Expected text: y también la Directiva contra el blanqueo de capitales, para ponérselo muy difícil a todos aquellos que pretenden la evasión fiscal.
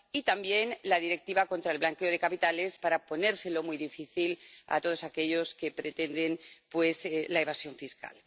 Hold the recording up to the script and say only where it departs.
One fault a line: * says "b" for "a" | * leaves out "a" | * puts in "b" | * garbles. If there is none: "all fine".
all fine